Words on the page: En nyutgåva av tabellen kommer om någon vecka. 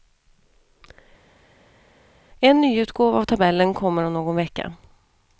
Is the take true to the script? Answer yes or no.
yes